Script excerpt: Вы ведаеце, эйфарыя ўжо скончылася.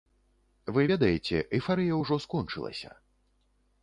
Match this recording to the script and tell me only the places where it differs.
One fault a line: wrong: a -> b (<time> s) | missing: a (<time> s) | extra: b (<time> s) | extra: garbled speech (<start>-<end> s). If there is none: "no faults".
no faults